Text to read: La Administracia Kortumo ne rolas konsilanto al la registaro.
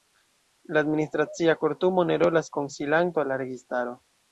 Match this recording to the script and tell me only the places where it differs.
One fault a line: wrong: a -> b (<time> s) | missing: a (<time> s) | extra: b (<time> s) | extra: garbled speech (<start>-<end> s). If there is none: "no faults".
no faults